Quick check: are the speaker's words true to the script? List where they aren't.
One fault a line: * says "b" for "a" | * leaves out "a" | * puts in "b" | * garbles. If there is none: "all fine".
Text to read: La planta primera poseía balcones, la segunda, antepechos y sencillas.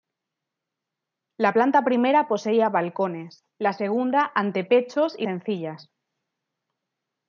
all fine